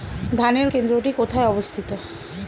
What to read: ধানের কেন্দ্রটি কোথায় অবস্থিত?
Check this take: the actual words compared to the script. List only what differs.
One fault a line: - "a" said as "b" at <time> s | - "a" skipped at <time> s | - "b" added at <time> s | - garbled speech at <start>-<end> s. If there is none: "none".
none